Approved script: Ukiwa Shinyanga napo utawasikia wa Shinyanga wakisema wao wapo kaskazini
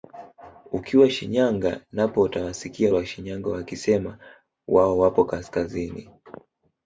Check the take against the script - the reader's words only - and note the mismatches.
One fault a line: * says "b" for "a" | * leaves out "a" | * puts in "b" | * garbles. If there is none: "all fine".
all fine